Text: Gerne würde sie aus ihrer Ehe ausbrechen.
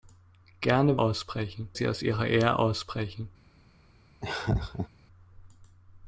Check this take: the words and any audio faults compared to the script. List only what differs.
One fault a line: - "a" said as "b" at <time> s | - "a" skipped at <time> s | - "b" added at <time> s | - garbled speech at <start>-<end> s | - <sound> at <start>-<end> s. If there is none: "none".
- "würde" said as "ausbrechen" at 1.0 s
- laugh at 4.2-4.9 s